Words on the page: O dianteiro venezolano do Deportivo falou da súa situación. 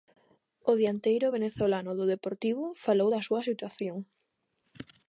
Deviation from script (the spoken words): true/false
false